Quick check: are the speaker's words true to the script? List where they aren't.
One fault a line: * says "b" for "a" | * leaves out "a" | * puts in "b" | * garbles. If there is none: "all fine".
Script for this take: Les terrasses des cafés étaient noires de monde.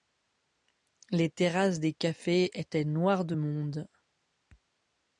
all fine